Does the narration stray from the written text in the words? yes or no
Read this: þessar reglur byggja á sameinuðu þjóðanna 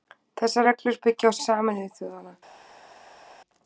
no